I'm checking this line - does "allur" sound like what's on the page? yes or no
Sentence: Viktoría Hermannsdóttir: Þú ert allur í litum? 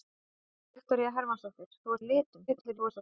no